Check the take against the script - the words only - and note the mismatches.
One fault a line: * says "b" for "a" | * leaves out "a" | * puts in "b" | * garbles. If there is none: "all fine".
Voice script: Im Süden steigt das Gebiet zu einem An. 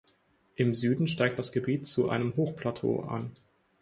* puts in "Hochplateau"